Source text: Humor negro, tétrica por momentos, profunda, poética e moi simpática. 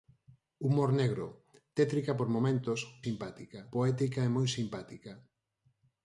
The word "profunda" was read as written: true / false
false